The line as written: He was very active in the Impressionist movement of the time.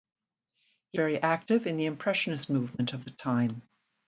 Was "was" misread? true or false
true